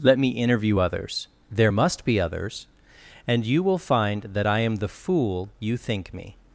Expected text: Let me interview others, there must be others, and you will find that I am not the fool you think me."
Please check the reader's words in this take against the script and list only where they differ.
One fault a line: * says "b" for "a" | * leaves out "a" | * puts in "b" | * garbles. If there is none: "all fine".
* leaves out "not"